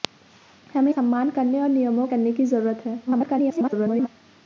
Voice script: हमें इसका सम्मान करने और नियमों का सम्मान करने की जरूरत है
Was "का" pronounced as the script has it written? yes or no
no